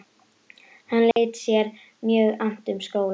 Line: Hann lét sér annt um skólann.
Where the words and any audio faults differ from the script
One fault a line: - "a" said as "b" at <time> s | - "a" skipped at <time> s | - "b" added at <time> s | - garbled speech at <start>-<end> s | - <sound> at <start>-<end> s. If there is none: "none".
- dropout at 1.1-1.2 s
- "mjög" added at 2.0 s